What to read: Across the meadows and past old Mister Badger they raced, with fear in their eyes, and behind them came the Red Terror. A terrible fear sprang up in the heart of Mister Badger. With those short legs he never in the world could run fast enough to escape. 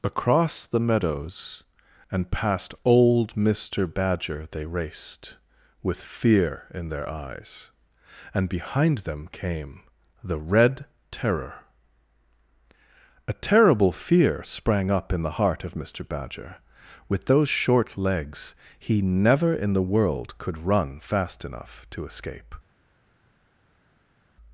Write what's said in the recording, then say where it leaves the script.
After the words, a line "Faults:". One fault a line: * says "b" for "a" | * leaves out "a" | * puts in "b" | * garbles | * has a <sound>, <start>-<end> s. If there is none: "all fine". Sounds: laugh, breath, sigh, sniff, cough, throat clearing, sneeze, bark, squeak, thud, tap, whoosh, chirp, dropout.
Across the meadows and past old Mister Badger they raced, with fear in their eyes, and behind them came the Red Terror. A terrible fear sprang up in the heart of Mister Badger. With those short legs he never in the world could run fast enough to escape.
Faults:
all fine